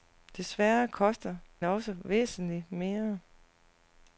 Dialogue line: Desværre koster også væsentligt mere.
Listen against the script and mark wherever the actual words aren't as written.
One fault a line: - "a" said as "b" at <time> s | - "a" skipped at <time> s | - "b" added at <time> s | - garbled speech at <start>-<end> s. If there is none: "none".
none